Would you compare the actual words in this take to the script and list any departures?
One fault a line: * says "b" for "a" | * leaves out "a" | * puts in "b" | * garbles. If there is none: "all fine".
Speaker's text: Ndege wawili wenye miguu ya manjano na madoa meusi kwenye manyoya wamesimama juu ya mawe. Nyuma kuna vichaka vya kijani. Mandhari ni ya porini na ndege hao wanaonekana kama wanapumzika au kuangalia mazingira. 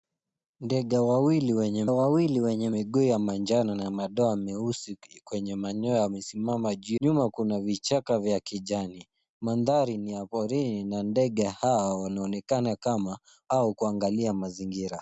* puts in "wawili wenye"
* leaves out "ya mawe"
* leaves out "wanapumzika"